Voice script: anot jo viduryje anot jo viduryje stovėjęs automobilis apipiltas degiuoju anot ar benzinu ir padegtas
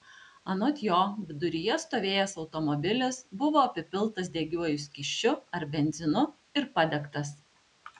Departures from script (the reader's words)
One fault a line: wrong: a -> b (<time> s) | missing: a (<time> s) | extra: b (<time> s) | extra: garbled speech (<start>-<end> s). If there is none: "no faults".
missing: anot jo viduryje (1.8 s)
extra: buvo (3.4 s)
wrong: anot -> skysčiu (4.9 s)